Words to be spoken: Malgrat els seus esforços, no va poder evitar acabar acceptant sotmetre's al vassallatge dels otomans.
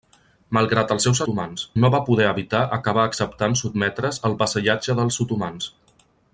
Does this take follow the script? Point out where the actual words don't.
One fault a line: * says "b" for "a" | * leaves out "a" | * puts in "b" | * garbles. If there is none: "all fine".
* says "otomans" for "esforços"